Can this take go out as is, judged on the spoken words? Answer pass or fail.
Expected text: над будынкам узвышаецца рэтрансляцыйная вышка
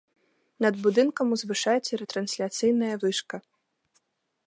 pass